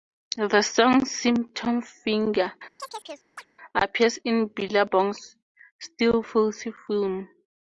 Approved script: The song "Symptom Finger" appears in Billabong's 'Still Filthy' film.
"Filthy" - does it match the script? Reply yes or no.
yes